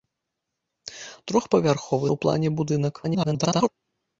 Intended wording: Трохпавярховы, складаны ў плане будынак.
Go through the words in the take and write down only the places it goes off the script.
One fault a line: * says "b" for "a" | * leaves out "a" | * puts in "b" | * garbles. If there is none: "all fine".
* leaves out "складаны"
* garbles